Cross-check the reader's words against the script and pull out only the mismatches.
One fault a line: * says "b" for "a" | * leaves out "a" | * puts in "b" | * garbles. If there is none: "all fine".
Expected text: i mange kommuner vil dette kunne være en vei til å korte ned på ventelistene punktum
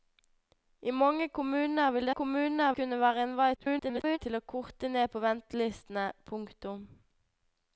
* says "kommuner" for "dette"
* garbles